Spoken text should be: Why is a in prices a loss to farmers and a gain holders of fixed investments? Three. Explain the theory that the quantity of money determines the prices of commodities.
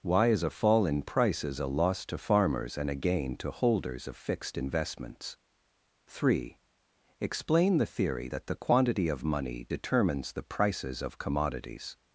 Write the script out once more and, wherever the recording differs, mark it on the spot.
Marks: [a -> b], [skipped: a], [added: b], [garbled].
Why is a [added: fall] in prices a loss to farmers and a gain [added: to] holders of fixed investments? Three. Explain the theory that the quantity of money determines the prices of commodities.